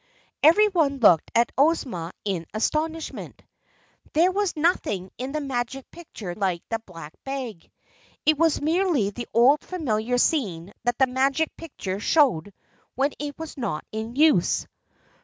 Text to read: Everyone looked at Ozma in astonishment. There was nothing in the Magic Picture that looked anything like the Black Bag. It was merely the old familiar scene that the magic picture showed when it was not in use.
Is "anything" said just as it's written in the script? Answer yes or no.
no